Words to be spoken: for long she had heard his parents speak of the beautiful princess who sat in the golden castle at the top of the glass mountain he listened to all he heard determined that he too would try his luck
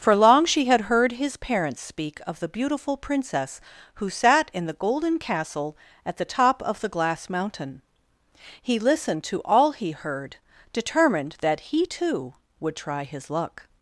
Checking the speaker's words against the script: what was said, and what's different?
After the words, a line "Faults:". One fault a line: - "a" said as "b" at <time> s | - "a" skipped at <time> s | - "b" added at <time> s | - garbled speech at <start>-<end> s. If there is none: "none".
for long she had heard his parents speak of the beautiful princess who sat in the golden castle at the top of the glass mountain he listened to all he heard determined that he too would try his luck
Faults:
none